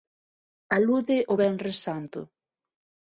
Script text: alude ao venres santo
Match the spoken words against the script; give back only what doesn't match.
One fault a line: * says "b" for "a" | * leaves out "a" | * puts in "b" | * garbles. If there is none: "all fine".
all fine